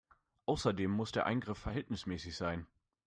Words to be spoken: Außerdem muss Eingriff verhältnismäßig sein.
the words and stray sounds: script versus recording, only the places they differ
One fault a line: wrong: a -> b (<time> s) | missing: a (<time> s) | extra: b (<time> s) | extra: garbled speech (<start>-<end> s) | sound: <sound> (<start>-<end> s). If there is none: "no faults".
extra: der (1.1 s)